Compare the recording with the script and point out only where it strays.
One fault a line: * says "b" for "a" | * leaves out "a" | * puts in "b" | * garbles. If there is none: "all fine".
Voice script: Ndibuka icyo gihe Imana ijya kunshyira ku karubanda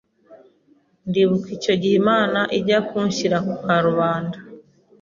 all fine